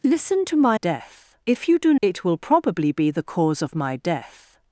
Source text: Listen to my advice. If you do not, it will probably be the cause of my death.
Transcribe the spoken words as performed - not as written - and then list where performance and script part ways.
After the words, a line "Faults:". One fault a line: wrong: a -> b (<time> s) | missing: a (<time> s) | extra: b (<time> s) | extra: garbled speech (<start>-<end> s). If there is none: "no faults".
Listen to my death. If you do it will probably be the cause of my death.
Faults:
wrong: advice -> death (0.7 s)
missing: not (1.9 s)